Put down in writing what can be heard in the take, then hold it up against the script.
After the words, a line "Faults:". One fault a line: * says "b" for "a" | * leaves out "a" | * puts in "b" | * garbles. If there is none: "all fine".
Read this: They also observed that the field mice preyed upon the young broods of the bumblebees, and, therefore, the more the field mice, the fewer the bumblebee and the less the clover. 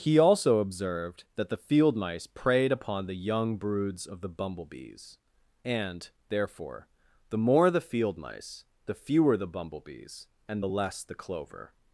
He also observed that the field mice preyed upon the young broods of the bumblebees, and, therefore, the more the field mice, the fewer the bumblebees and the less the clover.
Faults:
* says "He" for "They"
* says "bumblebees" for "bumblebee"